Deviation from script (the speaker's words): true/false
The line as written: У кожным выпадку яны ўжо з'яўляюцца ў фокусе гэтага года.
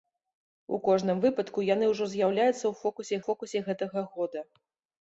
true